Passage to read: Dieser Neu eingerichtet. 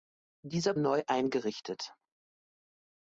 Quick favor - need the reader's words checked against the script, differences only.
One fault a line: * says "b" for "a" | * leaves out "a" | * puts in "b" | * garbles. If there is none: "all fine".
all fine